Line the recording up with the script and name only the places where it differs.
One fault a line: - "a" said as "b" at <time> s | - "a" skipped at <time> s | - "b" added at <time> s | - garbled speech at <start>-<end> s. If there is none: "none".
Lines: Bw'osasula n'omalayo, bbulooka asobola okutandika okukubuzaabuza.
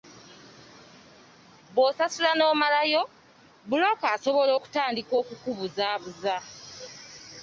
none